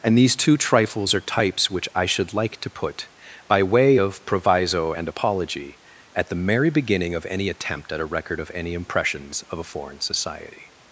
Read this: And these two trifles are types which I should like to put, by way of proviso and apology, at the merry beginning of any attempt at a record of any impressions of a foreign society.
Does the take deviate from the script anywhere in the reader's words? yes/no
no